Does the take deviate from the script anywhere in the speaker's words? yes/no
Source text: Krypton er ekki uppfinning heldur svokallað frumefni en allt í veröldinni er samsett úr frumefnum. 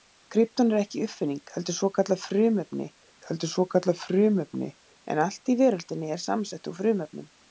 yes